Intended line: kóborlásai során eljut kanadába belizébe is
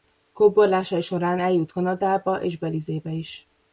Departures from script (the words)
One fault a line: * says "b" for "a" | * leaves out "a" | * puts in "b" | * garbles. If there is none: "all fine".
* puts in "és"